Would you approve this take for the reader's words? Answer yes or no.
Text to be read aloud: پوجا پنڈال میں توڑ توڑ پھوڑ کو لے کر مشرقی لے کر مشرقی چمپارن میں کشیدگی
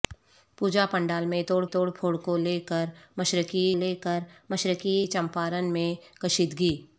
yes